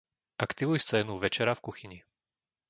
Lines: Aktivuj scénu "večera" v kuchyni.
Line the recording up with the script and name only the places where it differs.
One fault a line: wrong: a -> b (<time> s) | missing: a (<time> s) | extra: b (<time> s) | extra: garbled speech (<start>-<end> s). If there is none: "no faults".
no faults